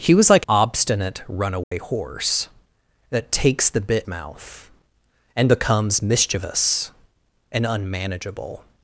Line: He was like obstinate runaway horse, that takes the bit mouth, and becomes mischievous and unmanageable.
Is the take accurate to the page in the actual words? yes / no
yes